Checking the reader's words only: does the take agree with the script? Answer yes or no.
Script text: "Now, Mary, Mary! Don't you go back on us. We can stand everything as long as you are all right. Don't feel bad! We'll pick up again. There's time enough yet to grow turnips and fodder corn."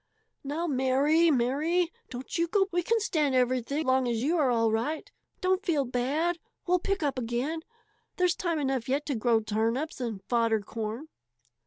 no